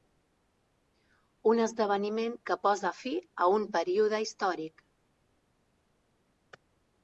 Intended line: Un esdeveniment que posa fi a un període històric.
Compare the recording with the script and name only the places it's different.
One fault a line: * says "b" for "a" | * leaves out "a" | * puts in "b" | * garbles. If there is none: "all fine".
all fine